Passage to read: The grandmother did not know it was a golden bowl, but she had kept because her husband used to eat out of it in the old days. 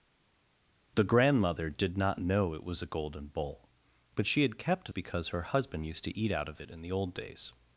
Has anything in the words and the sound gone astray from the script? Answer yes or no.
no